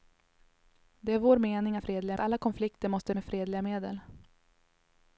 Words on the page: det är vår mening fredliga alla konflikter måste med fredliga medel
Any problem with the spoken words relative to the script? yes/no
no